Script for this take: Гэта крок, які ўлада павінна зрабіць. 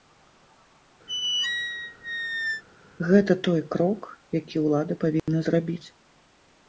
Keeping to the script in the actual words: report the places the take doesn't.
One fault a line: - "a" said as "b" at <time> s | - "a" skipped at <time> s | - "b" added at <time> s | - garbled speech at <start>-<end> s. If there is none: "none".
- "той" added at 3.5 s